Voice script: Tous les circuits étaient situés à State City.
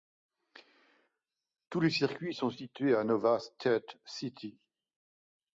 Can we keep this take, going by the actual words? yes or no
no